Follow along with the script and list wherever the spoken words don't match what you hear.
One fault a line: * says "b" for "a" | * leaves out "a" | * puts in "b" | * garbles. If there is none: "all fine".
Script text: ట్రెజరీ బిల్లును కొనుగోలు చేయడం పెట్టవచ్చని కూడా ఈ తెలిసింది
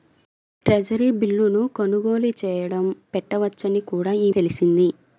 all fine